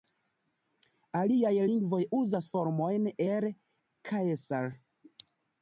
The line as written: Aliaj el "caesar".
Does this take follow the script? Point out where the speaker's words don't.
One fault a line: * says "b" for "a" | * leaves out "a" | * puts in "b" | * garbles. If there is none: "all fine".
* puts in "lingvoj uzas formojn"